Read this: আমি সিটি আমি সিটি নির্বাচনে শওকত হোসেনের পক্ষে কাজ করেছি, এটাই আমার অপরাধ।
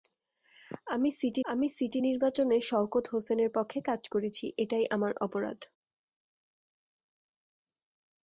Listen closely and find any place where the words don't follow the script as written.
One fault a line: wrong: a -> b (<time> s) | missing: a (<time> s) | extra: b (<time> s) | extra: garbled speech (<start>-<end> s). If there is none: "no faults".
no faults